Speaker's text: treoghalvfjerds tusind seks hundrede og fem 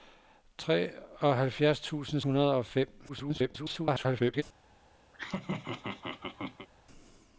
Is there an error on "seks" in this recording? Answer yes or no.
yes